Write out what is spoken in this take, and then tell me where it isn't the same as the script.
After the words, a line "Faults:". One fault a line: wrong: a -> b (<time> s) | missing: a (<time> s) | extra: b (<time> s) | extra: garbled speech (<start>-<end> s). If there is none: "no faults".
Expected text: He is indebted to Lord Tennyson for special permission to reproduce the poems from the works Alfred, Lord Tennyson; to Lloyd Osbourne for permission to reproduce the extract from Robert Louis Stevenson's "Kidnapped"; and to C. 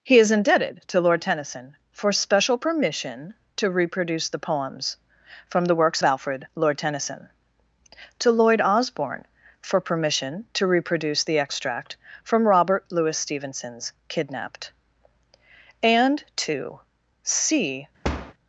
He is indebted to Lord Tennyson for special permission to reproduce the poems from the works Alfred, Lord Tennyson; to Lloyd Osbourne for permission to reproduce the extract from Robert Louis Stevenson's "Kidnapped"; and to C.
Faults:
no faults